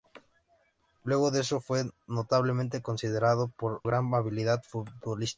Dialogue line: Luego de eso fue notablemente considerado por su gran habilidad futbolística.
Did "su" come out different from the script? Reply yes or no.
yes